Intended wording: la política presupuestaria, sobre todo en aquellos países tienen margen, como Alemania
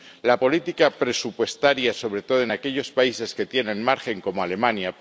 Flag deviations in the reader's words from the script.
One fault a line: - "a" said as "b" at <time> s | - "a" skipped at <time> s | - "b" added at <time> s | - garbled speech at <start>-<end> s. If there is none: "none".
- "que" added at 3.3 s